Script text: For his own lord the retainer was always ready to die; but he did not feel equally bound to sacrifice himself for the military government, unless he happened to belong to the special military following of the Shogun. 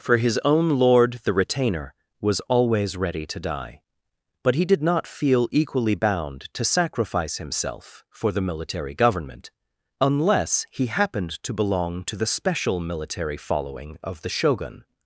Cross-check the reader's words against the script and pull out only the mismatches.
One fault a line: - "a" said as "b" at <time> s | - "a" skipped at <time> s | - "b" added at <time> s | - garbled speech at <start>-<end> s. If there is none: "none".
none